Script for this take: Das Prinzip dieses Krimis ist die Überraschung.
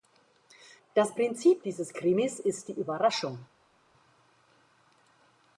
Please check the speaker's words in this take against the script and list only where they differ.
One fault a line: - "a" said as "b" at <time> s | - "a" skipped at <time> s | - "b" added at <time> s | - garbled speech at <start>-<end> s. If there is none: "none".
none